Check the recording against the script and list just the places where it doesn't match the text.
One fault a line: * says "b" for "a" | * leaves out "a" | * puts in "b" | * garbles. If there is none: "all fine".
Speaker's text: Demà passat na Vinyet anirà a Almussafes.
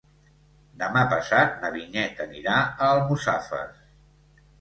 all fine